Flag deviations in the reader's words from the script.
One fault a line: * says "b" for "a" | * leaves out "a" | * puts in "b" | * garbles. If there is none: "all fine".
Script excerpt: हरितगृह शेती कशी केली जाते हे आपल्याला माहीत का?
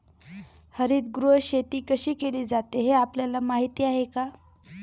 * puts in "आहे"